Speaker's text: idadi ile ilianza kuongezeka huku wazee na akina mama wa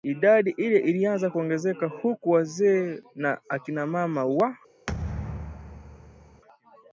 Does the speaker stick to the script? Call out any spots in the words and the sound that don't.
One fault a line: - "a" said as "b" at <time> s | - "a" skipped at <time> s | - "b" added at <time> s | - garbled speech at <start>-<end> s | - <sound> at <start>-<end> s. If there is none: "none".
- thud at 4.9-6.4 s